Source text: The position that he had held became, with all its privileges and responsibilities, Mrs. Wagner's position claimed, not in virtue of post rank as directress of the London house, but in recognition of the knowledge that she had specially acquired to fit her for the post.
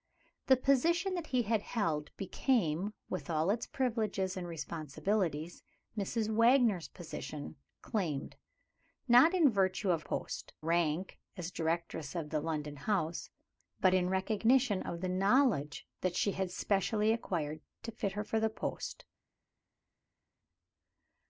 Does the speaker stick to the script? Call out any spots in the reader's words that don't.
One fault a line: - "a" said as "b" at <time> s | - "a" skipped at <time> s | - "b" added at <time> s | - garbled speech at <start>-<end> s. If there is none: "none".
none